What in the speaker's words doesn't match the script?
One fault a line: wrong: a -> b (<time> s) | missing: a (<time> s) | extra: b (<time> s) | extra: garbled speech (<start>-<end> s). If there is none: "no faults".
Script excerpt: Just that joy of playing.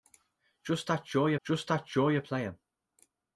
extra: just that joy (1.5 s)